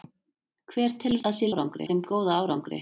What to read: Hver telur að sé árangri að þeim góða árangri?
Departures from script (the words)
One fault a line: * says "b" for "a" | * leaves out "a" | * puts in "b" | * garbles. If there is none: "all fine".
all fine